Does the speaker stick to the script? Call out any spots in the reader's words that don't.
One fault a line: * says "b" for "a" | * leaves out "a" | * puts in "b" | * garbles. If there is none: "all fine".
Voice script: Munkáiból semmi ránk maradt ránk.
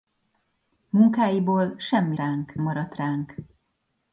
all fine